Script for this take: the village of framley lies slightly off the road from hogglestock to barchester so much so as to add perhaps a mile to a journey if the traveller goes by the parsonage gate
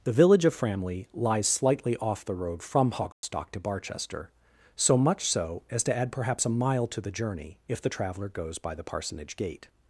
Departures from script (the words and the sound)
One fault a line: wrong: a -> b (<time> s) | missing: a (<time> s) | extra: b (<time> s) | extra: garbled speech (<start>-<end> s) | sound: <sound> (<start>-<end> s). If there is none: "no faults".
sound: dropout (3.1-3.2 s)
wrong: a -> the (7.0 s)